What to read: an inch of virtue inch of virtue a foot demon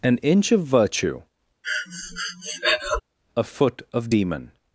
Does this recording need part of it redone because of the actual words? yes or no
yes